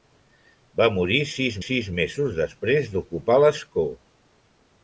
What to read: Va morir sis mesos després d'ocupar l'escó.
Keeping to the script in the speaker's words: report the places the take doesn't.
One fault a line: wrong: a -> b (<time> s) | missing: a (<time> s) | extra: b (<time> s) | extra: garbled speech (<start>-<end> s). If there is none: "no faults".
extra: sis (1.6 s)